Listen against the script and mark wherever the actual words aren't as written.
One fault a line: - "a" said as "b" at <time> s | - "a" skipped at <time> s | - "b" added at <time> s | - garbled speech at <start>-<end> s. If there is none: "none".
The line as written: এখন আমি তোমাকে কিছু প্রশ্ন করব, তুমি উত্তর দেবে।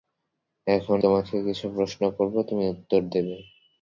- "আমি" skipped at 1.0 s